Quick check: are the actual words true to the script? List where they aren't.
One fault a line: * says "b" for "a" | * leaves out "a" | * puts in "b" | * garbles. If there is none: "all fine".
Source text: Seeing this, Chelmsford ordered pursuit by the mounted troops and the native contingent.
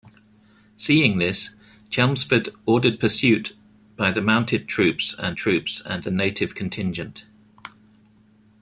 * puts in "troops and"